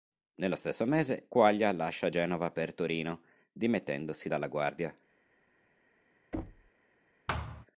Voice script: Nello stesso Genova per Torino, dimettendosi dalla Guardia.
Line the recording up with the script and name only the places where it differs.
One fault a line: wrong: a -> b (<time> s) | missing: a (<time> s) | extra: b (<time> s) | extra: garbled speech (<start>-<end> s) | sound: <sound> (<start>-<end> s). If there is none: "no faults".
extra: mese Quaglia lascia (0.8 s)
sound: thud (6.3-6.7 s)
sound: thud (7.3-7.7 s)